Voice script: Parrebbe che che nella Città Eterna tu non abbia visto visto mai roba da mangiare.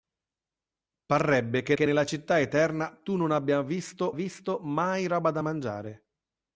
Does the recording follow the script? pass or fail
pass